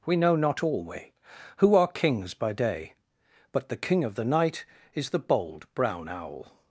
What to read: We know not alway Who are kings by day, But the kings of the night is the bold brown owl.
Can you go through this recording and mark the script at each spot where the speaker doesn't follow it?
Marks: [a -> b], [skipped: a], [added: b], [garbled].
We know not alway Who are kings by day, But the [kings -> king] of the night is the bold brown owl.